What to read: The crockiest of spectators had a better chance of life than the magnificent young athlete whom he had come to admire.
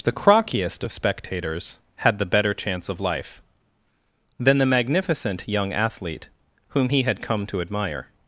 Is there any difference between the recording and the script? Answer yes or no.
yes